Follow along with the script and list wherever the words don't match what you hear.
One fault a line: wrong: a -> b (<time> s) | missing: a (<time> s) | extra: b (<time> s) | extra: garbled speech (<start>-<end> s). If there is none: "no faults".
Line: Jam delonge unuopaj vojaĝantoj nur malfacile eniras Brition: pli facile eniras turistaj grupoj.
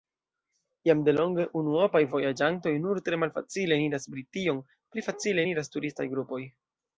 extra: tre (3.1 s)